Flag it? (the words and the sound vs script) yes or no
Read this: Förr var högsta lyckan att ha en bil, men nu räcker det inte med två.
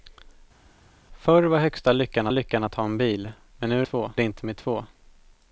yes